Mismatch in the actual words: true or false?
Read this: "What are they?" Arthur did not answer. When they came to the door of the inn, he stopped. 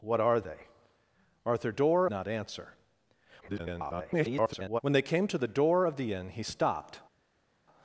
true